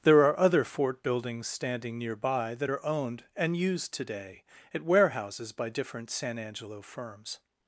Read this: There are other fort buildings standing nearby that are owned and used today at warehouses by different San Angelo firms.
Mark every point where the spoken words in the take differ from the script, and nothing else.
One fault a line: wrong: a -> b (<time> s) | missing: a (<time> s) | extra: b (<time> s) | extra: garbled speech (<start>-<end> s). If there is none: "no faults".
no faults